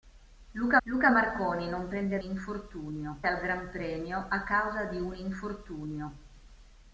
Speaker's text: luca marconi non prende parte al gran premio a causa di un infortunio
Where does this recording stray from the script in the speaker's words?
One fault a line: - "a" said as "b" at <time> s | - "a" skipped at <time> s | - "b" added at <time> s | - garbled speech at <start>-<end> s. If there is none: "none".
- "luca" added at 0.8 s
- "parte" said as "infortunio" at 2.2 s